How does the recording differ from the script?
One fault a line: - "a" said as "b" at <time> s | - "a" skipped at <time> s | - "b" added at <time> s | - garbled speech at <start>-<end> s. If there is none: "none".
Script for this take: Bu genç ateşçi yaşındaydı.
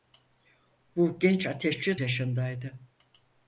none